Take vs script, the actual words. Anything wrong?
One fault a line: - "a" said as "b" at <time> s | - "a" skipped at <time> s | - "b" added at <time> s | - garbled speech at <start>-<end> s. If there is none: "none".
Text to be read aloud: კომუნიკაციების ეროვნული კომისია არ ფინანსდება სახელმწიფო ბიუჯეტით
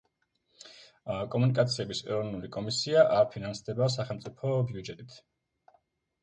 none